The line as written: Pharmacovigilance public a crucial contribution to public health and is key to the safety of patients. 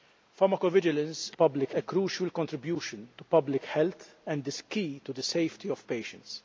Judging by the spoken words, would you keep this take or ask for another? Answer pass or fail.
pass